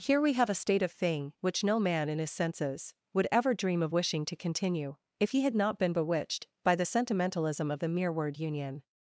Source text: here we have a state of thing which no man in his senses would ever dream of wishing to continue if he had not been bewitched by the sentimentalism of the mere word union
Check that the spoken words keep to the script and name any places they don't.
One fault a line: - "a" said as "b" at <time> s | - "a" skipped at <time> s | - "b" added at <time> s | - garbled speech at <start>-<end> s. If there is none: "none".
none